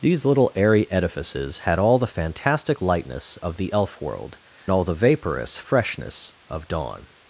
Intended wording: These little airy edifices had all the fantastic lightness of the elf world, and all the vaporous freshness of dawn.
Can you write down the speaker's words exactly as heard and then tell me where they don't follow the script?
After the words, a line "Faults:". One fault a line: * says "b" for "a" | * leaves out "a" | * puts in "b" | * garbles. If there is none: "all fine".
These little airy edifices had all the fantastic lightness of the elf world, all the vaporous freshness of dawn.
Faults:
* leaves out "and"